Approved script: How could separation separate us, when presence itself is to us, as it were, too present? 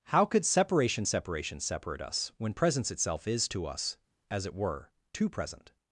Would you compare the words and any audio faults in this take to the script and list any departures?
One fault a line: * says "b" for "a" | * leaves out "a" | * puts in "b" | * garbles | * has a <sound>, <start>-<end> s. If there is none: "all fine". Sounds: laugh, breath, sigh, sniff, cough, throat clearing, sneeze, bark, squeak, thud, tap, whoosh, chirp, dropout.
* puts in "separation"